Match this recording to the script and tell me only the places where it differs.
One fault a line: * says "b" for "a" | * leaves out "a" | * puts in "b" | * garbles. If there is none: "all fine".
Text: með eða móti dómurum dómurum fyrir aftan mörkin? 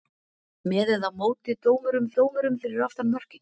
all fine